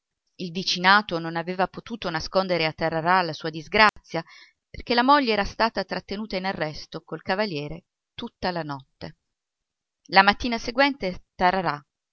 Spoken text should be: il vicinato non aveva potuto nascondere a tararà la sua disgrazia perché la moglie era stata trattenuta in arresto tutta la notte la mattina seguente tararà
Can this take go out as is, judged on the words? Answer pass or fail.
fail